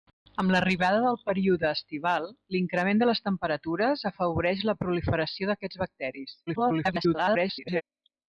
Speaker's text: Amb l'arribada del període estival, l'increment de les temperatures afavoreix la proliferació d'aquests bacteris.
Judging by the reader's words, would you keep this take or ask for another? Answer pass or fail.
fail